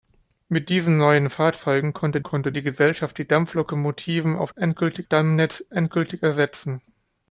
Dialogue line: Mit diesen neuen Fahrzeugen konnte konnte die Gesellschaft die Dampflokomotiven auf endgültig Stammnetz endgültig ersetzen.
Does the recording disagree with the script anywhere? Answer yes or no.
no